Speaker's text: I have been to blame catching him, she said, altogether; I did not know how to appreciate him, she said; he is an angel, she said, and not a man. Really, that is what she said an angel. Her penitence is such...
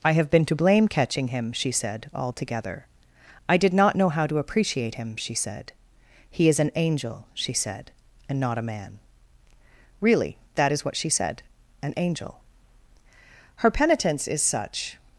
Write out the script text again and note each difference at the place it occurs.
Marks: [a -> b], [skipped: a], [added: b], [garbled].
I have been to blame catching him, she said, altogether; I did not know how to appreciate him, she said; he is an angel, she said, and not a man. Really, that is what she said an angel. Her penitence is such...